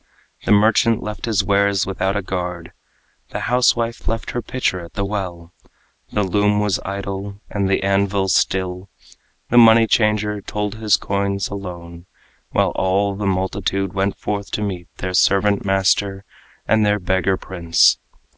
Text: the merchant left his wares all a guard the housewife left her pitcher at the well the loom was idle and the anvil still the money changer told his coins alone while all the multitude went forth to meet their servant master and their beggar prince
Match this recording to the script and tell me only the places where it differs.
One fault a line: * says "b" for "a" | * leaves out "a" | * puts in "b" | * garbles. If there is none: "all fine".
* says "without" for "all"